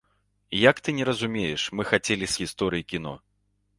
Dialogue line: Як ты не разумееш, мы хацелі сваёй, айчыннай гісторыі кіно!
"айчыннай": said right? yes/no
no